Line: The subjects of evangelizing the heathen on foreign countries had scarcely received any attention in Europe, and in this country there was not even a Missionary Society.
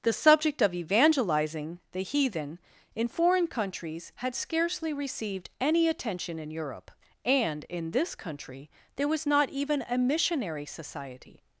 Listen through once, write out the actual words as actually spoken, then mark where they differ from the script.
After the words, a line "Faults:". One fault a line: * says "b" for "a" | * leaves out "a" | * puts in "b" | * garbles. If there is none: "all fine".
The subject of evangelizing the heathen in foreign countries had scarcely received any attention in Europe, and in this country there was not even a Missionary Society.
Faults:
* says "subject" for "subjects"
* says "in" for "on"